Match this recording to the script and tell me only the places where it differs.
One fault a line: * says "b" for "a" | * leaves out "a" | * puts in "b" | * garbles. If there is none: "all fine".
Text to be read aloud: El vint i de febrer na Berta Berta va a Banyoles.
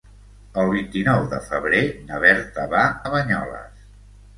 * puts in "nou"
* leaves out "Berta"